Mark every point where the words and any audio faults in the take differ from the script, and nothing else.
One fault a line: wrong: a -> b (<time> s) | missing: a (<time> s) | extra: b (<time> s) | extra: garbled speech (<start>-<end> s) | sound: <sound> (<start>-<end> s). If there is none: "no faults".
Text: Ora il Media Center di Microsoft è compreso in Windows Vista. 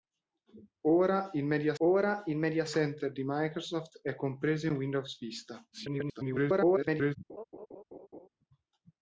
extra: ora il Media (1.8 s)
extra: garbled speech (5.7-7.2 s)
sound: laugh (7.3-8.3 s)